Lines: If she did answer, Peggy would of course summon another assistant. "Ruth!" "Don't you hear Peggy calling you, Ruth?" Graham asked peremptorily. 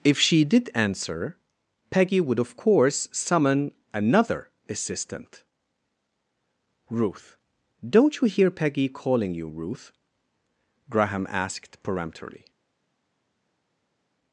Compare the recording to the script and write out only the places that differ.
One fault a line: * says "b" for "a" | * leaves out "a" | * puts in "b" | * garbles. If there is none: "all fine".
all fine